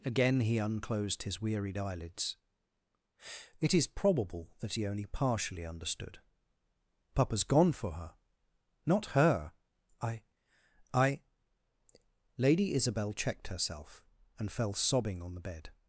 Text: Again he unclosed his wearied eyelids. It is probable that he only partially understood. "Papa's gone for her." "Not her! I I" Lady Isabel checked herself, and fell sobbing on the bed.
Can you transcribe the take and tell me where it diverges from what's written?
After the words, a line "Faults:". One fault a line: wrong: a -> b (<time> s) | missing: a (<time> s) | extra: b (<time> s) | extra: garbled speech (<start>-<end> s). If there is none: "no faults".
Again he unclosed his wearied eyelids. It is probable that he only partially understood. "Papa's gone for her." "Not her! I I" Lady Isabel checked herself, and fell sobbing on the bed.
Faults:
no faults